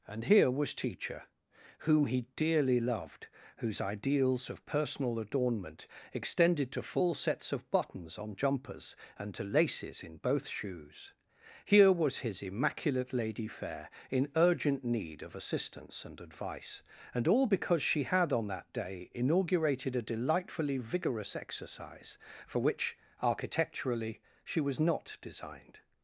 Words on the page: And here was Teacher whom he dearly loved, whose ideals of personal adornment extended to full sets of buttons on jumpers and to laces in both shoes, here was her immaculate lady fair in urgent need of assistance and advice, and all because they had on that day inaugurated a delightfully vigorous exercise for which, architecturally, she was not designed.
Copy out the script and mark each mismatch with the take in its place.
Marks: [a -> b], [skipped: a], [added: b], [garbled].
And here was Teacher whom he dearly loved, whose ideals of personal adornment extended to full sets of buttons on jumpers and to laces in both shoes, here was [her -> his] immaculate lady fair in urgent need of assistance and advice, and all because [they -> she] had on that day inaugurated a delightfully vigorous exercise for which, architecturally, she was not designed.